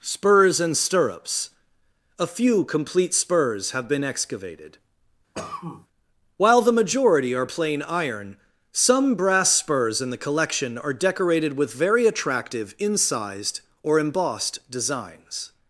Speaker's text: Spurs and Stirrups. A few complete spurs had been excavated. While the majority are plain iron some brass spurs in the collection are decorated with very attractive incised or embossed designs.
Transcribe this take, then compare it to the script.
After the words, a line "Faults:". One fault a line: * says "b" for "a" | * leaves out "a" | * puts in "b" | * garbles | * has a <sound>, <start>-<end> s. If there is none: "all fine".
Spurs and Stirrups. A few complete spurs have been excavated. While the majority are plain iron some brass spurs in the collection are decorated with very attractive incised or embossed designs.
Faults:
* says "have" for "had"
* has a cough, 5.3-5.9 s